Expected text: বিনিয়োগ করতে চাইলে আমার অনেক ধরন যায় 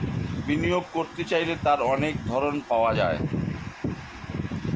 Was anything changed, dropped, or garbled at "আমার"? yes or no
yes